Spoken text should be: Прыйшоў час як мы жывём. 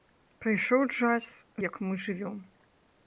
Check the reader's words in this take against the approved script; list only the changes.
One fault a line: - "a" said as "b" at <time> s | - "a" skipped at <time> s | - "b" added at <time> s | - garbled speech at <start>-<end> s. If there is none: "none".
none